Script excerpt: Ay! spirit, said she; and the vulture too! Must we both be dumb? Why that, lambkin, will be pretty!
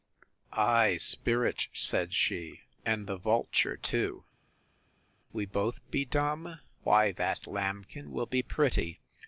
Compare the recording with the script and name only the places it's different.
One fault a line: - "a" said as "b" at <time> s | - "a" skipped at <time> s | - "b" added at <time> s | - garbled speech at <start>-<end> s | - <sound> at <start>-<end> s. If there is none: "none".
- "Must" skipped at 4.2 s